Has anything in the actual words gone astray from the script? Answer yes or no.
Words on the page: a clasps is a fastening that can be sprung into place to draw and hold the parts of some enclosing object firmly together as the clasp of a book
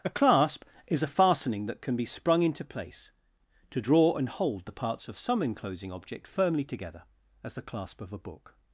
yes